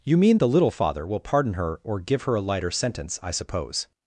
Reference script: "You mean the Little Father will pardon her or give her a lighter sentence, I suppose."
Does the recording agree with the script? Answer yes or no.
yes